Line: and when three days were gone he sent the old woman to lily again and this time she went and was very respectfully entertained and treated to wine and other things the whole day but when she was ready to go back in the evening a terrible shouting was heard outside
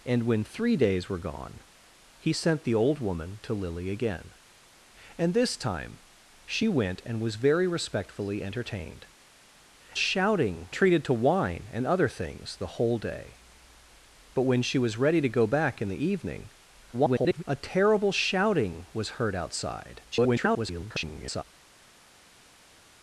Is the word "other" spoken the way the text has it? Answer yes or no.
yes